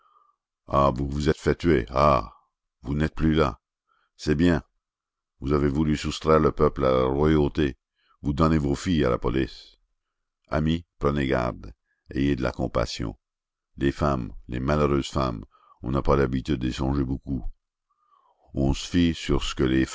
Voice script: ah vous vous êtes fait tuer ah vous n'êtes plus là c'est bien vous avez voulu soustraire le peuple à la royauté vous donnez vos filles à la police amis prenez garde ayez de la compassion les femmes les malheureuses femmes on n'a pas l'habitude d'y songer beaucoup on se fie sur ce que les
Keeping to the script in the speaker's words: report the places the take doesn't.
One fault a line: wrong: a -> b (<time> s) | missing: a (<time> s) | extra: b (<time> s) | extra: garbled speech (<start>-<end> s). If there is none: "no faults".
no faults